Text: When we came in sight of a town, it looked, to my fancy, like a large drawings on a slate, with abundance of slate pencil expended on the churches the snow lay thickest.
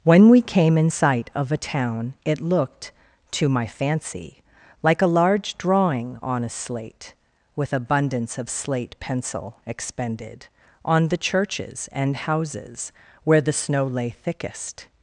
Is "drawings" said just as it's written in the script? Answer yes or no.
no